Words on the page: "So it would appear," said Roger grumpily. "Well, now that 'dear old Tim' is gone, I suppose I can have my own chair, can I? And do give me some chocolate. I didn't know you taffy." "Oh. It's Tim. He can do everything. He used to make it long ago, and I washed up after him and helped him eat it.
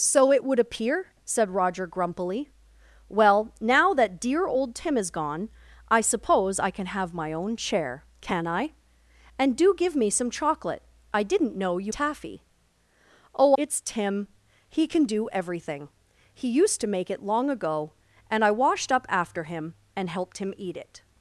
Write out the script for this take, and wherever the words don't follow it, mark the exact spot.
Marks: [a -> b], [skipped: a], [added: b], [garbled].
"So it would appear," said Roger grumpily. "Well, now that 'dear old Tim' is gone, I suppose I can have my own chair, can I? And do give me some chocolate. I didn't know you taffy." "Oh. It's Tim. He can do everything. He used to make it long ago, and I washed up after him and helped him eat it.